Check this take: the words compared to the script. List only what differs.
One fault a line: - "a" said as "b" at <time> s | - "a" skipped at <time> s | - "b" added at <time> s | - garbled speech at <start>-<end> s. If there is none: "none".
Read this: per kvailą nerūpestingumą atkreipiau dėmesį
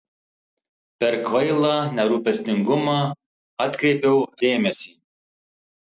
none